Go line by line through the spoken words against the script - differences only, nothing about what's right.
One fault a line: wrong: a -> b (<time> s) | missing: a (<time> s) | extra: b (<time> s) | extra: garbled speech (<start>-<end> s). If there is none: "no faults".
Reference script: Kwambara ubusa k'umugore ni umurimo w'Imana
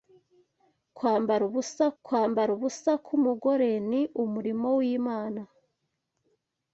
extra: kwambara ubusa (2.0 s)